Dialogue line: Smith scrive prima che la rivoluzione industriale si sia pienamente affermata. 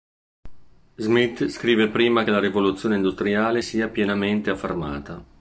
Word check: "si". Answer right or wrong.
wrong